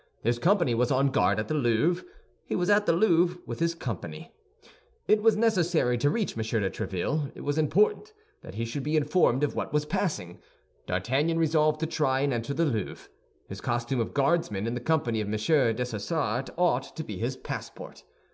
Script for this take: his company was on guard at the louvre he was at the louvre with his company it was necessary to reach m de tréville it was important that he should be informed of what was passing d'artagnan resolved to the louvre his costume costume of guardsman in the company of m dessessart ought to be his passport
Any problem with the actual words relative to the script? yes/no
yes